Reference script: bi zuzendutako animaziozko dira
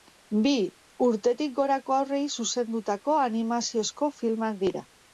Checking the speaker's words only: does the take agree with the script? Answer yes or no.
no